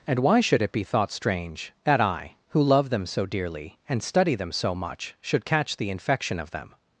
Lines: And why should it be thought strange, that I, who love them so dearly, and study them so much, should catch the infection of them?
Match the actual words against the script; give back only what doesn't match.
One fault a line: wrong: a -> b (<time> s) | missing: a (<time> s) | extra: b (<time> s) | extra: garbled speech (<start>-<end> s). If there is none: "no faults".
no faults